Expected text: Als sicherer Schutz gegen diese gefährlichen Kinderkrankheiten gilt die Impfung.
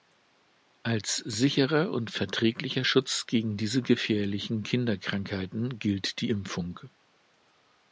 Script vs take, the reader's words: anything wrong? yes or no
yes